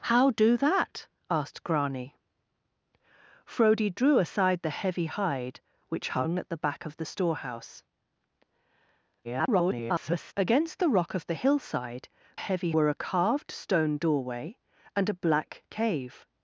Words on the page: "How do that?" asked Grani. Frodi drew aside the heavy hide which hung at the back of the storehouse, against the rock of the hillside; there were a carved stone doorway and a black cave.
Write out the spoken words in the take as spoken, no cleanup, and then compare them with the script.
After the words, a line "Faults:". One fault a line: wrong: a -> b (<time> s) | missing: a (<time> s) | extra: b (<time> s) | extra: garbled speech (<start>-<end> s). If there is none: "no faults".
"How do that?" asked Grani. Frodi drew aside the heavy hide which hung at the back of the storehouse, [garbled] against the rock of the hillside; heavy were a carved stone doorway and a black cave.
Faults:
extra: garbled speech (9.2-10.3 s)
wrong: there -> heavy (12.3 s)